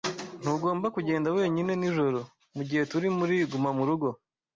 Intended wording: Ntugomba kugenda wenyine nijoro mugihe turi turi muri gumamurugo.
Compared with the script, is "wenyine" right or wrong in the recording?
right